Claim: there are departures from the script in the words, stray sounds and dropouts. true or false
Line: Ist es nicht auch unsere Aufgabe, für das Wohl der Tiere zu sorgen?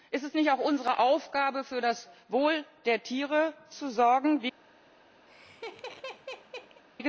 true